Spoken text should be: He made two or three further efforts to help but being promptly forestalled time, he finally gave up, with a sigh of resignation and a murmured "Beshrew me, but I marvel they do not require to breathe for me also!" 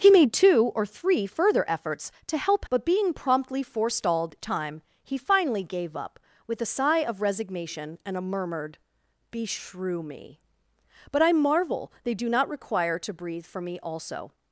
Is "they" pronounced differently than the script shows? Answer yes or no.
no